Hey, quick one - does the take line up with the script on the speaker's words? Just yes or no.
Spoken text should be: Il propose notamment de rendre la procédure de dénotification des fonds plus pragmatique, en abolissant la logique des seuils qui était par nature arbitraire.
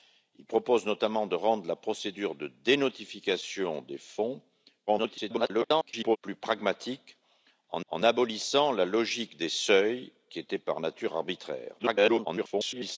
no